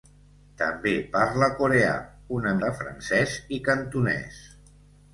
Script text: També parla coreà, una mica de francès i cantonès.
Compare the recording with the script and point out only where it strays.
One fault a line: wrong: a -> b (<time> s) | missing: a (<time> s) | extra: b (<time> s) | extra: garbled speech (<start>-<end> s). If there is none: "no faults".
missing: mica (2.6 s)